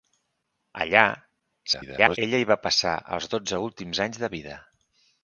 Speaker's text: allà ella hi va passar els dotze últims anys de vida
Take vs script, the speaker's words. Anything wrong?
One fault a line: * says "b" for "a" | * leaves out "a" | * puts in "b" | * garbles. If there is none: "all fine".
* garbles